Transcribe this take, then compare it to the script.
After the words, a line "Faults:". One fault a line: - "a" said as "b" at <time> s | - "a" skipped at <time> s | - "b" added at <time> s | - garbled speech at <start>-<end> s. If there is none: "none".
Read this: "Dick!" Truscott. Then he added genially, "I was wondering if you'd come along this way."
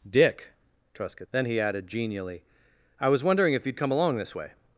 "Dick!" Truscott. Then he added genially, "I was wondering if you'd come along this way."
Faults:
none